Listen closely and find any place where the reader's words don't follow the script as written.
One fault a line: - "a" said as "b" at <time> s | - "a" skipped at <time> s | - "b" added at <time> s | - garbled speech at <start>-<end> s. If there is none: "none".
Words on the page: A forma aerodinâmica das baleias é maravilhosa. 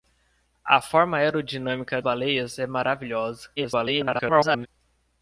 - "das" skipped at 2.0 s
- garbled speech at 3.6-4.7 s